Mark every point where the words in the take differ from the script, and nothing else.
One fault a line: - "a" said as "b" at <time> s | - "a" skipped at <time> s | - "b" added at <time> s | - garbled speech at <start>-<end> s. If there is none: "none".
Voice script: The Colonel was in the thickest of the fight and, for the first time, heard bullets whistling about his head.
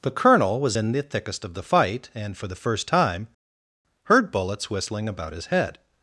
none